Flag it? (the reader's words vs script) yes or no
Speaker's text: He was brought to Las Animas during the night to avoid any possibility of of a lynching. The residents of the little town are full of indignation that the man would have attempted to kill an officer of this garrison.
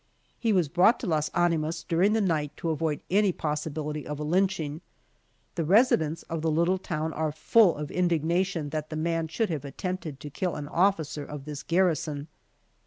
yes